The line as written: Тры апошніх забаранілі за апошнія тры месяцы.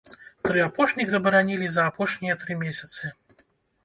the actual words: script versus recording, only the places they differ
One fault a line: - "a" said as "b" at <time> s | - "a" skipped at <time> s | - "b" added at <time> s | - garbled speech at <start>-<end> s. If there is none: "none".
none